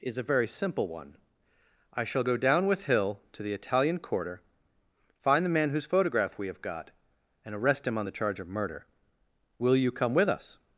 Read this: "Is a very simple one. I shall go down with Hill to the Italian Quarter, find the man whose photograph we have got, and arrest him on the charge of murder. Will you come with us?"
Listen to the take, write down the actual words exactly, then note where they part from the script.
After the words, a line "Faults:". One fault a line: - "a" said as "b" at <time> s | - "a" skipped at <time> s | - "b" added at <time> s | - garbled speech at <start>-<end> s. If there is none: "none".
"Is a very simple one. I shall go down with Hill to the Italian Quarter, find the man whose photograph we have got, and arrest him on the charge of murder. Will you come with us?"
Faults:
none